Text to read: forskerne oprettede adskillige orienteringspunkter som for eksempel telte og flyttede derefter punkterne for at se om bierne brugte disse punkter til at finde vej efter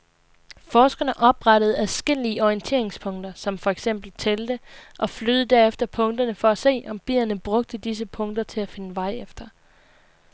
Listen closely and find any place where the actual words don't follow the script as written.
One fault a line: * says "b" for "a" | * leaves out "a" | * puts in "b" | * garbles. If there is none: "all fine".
all fine